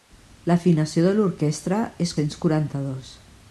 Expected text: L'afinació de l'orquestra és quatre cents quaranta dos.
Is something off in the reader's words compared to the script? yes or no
yes